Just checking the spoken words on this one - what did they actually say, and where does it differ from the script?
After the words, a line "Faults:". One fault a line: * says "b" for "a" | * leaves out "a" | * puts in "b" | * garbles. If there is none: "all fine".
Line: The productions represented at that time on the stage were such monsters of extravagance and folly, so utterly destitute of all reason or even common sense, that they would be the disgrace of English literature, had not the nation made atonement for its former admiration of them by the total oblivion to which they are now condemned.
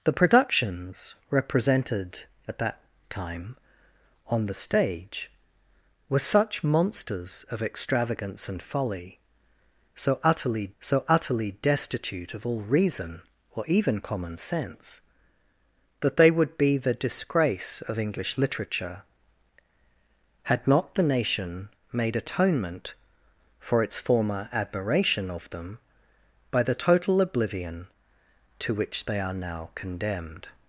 The productions represented at that time on the stage were such monsters of extravagance and folly, so utterly so utterly destitute of all reason or even common sense, that they would be the disgrace of English literature, had not the nation made atonement for its former admiration of them by the total oblivion to which they are now condemned.
Faults:
* puts in "so utterly"